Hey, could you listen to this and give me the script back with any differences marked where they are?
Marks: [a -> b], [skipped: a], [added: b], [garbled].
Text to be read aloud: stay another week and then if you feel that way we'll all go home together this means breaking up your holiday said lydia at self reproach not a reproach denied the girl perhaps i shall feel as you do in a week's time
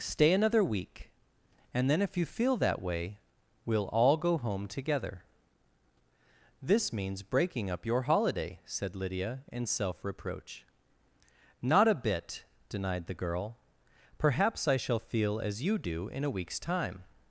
stay another week and then if you feel that way we'll all go home together this means breaking up your holiday said lydia [at -> in] self reproach not a [reproach -> bit] denied the girl perhaps i shall feel as you do in a week's time